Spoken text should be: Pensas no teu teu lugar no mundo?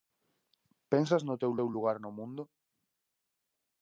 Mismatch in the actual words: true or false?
false